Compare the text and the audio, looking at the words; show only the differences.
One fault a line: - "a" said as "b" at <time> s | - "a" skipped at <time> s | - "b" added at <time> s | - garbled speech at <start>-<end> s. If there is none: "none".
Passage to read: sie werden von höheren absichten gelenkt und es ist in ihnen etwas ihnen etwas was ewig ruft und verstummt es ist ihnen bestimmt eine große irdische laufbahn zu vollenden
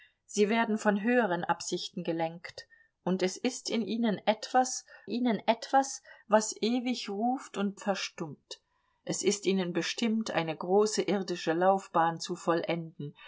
none